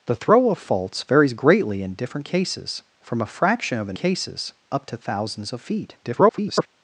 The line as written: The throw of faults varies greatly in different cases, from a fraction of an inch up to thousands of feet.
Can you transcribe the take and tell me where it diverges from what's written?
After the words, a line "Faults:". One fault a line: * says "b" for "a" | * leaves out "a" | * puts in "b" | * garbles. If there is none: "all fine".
The throw of faults varies greatly in different cases, from a fraction of an cases up to thousands of feet. [garbled]
Faults:
* says "cases" for "inch"
* garbles